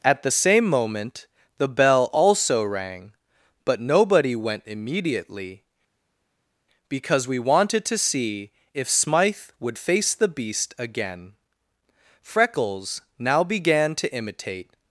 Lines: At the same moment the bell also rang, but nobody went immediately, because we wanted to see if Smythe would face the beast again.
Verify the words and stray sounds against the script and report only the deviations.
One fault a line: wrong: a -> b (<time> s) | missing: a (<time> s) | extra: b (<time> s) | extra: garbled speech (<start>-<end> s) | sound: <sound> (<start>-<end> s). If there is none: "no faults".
extra: Freckles now began to imitate (12.2 s)